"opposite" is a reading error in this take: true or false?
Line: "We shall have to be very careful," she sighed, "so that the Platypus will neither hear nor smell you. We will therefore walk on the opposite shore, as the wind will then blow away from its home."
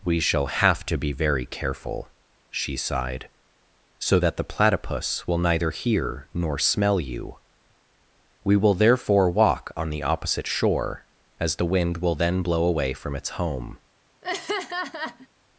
false